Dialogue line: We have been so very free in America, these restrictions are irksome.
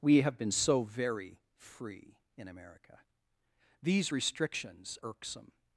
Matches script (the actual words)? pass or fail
fail